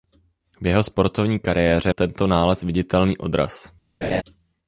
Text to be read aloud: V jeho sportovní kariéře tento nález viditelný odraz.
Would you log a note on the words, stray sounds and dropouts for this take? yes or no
yes